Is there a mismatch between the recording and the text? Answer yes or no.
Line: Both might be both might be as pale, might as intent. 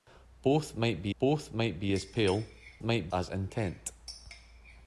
no